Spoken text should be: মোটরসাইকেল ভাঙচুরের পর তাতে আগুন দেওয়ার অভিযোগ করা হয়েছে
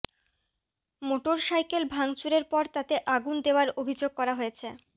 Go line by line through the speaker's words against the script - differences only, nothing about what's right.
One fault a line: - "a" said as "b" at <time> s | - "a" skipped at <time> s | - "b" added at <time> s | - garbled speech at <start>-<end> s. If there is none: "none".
none